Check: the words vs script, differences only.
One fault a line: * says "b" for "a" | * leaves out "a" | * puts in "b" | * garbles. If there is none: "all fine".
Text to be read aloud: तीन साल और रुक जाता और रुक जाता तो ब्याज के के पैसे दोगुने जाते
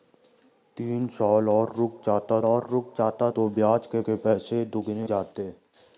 all fine